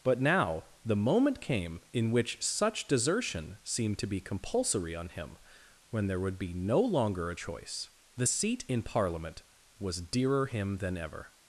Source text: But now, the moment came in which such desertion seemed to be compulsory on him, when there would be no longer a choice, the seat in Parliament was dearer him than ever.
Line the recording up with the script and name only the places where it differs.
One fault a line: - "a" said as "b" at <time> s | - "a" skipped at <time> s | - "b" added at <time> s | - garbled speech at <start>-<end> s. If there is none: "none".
none